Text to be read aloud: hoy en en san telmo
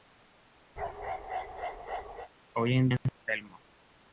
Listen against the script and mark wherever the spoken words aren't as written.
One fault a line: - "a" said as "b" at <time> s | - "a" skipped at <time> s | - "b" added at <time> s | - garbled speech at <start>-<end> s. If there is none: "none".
none